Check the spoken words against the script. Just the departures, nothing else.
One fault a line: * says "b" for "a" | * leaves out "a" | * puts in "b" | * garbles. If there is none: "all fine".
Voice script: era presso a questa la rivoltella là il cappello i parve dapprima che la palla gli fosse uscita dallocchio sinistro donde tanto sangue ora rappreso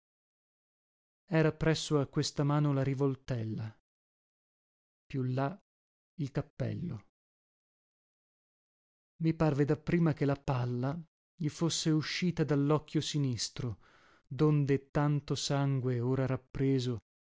* puts in "mano"
* puts in "più"